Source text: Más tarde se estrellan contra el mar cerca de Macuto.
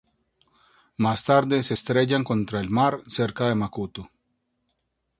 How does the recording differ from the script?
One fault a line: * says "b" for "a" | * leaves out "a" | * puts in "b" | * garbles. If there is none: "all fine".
all fine